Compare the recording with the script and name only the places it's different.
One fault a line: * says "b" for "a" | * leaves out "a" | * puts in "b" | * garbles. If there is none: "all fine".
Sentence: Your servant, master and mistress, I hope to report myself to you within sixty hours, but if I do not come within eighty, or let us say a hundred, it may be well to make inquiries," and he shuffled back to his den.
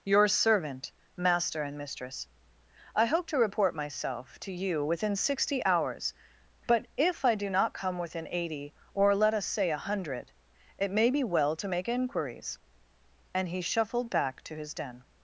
all fine